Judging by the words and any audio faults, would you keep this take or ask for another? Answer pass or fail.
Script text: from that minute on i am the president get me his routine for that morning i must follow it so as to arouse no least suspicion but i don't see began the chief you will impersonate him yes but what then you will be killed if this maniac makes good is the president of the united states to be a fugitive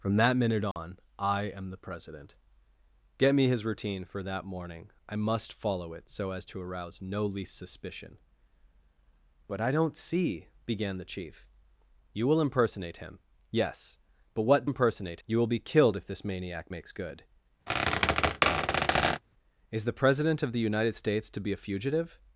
fail